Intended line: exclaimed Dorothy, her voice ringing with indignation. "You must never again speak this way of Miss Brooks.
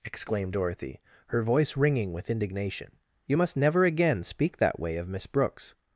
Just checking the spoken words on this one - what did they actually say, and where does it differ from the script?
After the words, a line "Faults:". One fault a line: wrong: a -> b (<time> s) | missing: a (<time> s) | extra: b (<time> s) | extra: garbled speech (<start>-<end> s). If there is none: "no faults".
exclaimed Dorothy, her voice ringing with indignation. "You must never again speak that way of Miss Brooks.
Faults:
wrong: this -> that (4.6 s)